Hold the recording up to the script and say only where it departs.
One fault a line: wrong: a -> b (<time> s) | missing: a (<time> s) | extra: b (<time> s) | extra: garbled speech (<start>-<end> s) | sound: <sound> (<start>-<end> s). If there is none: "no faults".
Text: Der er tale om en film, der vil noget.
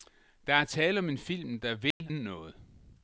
sound: dropout (1.9-2.0 s)